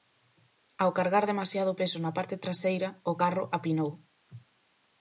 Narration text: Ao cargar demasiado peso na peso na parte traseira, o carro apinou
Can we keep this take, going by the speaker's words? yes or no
no